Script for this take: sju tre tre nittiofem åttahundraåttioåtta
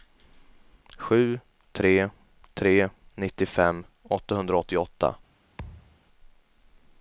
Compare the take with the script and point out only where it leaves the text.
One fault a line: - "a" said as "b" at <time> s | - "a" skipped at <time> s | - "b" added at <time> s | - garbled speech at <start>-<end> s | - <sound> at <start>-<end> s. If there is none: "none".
- thud at 5.6-6.0 s